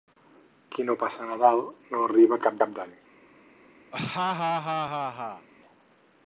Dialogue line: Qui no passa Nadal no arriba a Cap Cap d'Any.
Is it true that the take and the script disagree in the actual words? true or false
false